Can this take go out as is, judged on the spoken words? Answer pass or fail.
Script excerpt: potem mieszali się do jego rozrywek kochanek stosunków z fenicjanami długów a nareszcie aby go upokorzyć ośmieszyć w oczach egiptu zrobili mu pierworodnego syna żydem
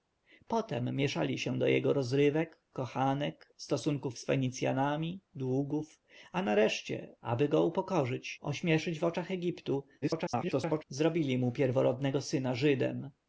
fail